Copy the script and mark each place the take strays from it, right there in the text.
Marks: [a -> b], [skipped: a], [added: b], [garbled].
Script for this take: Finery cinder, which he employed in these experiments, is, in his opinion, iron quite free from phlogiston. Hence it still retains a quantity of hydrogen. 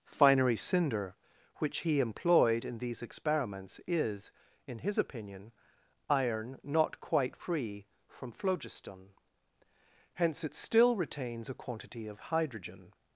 Finery cinder, which he employed in these experiments, is, in his opinion, iron [added: not] quite free from phlogiston. Hence it still retains a quantity of hydrogen.